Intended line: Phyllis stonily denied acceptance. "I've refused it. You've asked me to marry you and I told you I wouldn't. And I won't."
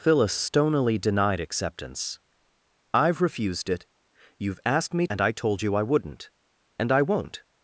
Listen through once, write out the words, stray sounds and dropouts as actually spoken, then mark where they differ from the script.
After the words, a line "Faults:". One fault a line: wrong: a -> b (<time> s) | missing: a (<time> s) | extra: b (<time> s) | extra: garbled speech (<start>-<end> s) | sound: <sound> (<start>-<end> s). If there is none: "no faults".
Phyllis stonily denied acceptance. "I've refused it. You've asked me and I told you I wouldn't. And I won't."
Faults:
missing: to marry you (5.0 s)